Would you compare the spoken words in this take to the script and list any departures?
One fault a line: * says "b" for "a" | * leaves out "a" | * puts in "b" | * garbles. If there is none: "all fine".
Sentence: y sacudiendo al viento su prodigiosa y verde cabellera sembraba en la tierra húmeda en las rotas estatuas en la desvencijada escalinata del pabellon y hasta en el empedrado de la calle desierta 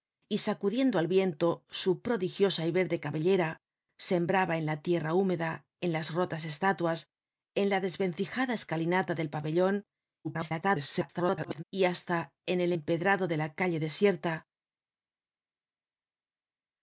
* garbles